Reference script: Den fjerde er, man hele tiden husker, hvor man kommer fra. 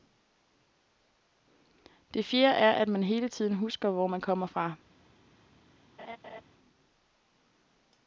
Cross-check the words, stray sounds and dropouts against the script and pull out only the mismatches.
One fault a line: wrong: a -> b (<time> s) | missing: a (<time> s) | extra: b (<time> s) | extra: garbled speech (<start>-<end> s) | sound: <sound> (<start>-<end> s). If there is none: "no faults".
wrong: Den -> Det (2.1 s)
extra: at (2.7 s)
sound: laugh (6.0-6.4 s)